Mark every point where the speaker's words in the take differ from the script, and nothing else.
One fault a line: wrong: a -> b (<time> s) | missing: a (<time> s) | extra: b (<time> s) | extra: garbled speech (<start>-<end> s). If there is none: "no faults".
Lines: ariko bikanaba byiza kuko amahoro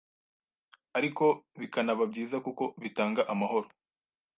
extra: bitanga (2.8 s)